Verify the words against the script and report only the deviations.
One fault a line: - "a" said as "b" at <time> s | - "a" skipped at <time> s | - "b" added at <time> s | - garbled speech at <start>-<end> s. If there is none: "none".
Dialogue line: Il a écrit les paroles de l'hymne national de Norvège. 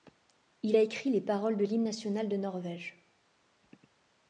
none